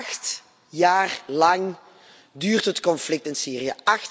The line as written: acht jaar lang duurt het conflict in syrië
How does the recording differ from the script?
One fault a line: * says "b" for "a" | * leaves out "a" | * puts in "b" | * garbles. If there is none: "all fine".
all fine